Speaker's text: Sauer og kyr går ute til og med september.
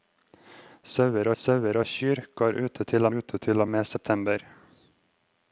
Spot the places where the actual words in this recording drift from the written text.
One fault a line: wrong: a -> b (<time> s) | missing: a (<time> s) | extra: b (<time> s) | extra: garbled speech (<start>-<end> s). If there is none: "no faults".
extra: sauer (1.4 s)
extra: ute til (3.2 s)